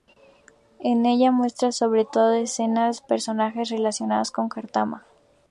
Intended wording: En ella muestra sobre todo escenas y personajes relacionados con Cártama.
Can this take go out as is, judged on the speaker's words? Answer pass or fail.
pass